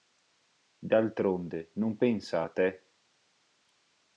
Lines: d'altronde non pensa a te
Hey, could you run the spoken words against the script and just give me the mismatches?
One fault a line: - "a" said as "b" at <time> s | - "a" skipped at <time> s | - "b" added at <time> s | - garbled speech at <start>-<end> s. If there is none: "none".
none